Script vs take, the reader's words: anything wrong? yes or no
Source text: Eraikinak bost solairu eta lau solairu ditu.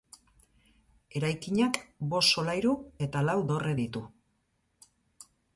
yes